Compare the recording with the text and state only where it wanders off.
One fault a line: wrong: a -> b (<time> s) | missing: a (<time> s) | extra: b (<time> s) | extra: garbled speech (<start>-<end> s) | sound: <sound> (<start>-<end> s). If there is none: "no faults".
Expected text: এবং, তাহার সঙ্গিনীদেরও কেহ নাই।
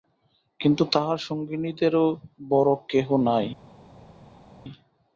wrong: এবং -> কিন্তু (0.6 s)
extra: বড়ো (2.5 s)